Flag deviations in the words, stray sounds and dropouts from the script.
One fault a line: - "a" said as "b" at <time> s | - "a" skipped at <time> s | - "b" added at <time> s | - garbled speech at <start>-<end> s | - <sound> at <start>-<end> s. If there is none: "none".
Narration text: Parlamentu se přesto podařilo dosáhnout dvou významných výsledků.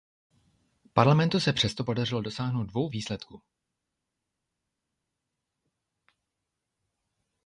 - "významných" skipped at 2.9 s